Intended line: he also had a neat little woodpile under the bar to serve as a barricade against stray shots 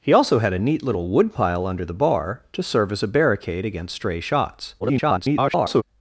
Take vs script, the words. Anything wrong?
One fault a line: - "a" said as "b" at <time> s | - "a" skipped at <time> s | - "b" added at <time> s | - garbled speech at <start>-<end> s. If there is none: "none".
- garbled speech at 4.8-5.8 s